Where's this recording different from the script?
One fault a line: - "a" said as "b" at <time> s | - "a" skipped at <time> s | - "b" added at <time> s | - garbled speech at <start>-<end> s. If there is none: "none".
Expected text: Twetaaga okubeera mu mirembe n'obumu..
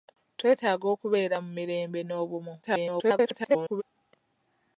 - garbled speech at 2.6-3.8 s